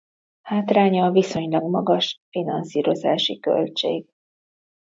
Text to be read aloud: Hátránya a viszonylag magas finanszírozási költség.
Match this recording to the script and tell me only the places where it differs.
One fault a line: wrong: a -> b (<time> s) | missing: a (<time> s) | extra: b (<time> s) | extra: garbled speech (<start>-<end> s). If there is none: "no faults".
no faults